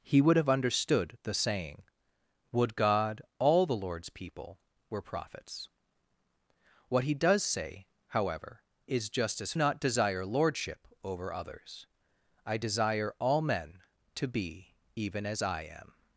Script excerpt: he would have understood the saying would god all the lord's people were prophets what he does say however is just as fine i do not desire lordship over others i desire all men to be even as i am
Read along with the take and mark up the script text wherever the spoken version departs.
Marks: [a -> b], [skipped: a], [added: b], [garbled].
he would have understood the saying would god all the lord's people were prophets what he does say however is just as [skipped: fine i do] not desire lordship over others i desire all men to be even as i am